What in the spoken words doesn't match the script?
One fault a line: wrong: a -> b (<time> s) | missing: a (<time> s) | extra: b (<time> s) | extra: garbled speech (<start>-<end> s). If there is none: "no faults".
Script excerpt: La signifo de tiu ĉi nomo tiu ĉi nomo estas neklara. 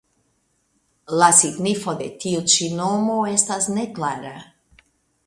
missing: tiu ĉi nomo (3.1 s)